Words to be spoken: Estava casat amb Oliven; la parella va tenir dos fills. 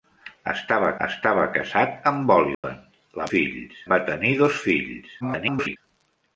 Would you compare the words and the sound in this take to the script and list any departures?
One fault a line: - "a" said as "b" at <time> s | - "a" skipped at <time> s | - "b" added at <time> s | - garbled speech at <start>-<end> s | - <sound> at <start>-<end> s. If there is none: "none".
- "estava" added at 1.0 s
- dropout at 2.5-2.6 s
- "parella" said as "fills" at 3.3 s
- garbled speech at 5.2-5.8 s